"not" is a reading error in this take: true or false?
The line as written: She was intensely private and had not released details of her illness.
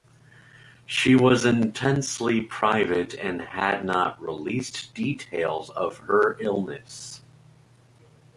false